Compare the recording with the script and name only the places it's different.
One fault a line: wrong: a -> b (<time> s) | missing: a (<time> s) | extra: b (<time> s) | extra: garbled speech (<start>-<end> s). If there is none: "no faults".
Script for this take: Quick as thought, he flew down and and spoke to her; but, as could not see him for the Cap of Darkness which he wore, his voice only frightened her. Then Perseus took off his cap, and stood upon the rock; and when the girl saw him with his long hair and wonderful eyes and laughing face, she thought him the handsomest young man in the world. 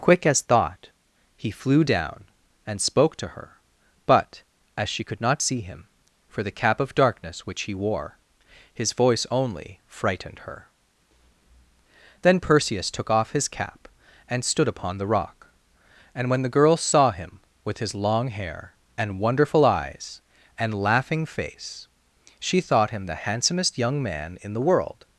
missing: and (2.8 s)
extra: she (4.9 s)